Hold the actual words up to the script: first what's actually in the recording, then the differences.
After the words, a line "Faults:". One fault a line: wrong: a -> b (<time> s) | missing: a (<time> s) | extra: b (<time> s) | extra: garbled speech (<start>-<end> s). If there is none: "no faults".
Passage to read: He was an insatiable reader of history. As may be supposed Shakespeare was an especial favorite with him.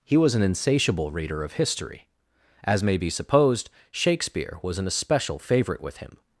He was an insatiable reader of history. As may be supposed Shakespeare was an especial favorite with him.
Faults:
no faults